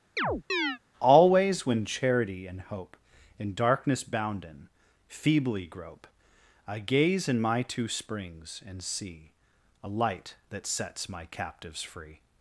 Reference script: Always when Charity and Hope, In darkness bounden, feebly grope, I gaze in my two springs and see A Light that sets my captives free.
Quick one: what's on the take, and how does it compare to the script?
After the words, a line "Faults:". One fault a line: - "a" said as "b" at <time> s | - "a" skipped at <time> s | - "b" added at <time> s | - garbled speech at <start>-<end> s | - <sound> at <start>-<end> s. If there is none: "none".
Always when Charity and Hope, In darkness bounden, feebly grope, I gaze in my two springs and see A Light that sets my captives free.
Faults:
- chirp at 0.2-0.8 s